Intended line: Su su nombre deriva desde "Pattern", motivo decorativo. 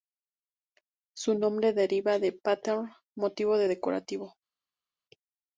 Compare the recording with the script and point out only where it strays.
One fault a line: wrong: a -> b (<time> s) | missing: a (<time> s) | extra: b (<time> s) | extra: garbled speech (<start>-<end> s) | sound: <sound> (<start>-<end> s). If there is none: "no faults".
missing: su (1.4 s)
wrong: desde -> de (2.2 s)